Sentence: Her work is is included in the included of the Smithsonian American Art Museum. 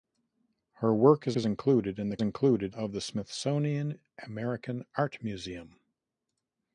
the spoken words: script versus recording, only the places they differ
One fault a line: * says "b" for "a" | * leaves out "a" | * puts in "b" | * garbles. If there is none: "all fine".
all fine